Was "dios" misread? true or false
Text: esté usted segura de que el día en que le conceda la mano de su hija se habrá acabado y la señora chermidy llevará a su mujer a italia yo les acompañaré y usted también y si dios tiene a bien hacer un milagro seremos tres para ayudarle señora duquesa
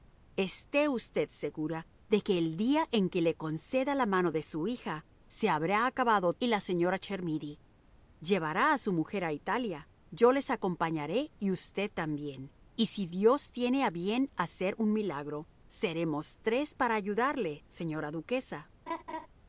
false